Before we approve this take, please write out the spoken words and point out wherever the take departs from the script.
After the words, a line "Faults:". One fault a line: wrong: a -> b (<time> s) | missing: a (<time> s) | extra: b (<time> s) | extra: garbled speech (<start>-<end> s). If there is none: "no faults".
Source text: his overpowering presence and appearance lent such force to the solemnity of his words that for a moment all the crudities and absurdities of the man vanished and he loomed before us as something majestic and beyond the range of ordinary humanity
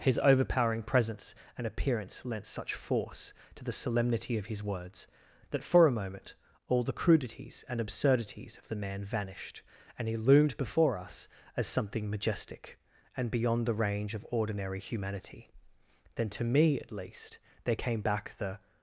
his overpowering presence and appearance lent such force to the solemnity of his words that for a moment all the crudities and absurdities of the man vanished and he loomed before us as something majestic and beyond the range of ordinary humanity then to me at least there came back the
Faults:
extra: then to me at least there came back the (16.1 s)